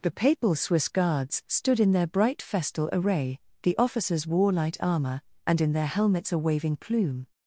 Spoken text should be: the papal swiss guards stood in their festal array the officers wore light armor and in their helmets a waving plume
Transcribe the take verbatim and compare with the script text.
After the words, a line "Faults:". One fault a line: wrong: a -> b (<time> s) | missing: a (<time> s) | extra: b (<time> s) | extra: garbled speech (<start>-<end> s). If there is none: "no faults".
the papal swiss guards stood in their bright festal array the officers wore light armor and in their helmets a waving plume
Faults:
extra: bright (2.1 s)